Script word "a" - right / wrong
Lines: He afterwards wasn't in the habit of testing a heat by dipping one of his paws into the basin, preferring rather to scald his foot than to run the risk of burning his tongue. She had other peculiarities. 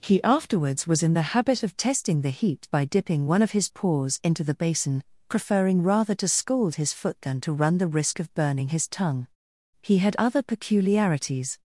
wrong